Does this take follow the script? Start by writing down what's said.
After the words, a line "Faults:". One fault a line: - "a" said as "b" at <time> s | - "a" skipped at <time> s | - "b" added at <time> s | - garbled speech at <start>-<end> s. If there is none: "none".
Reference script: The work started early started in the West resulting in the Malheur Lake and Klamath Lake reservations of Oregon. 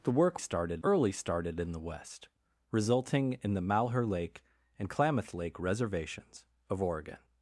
The work started early started in the West resulting in the Malheur Lake and Klamath Lake reservations of Oregon.
Faults:
none